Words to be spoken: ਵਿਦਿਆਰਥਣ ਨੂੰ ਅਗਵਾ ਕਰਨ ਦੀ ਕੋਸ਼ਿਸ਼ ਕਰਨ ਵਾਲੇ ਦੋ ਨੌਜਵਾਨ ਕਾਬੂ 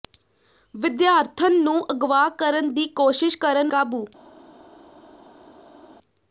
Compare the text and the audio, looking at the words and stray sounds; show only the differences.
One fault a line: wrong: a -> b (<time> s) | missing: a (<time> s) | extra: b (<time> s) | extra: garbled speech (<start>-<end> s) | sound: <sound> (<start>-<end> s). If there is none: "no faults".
missing: ਵਾਲੇ ਦੋ ਨੌਜਵਾਨ (3.7 s)